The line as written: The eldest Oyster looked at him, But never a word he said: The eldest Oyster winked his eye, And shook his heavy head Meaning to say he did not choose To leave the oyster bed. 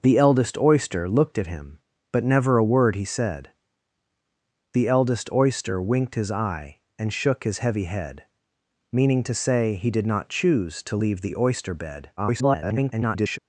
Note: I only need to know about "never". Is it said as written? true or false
true